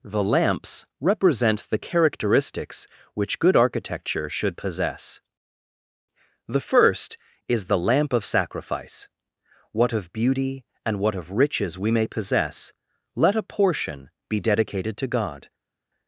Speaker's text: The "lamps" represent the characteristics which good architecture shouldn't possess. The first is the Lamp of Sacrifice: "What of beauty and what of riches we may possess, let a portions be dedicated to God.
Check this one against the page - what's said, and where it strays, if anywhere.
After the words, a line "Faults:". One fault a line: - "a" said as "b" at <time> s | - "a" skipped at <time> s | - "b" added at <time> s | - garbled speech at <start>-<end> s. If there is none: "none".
The "lamps" represent the characteristics which good architecture should possess. The first is the Lamp of Sacrifice: "What of beauty and what of riches we may possess, let a portion be dedicated to God.
Faults:
- "shouldn't" said as "should" at 4.3 s
- "portions" said as "portion" at 13.4 s